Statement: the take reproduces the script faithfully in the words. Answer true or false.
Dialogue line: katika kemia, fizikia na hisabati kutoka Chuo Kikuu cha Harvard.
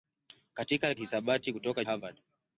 false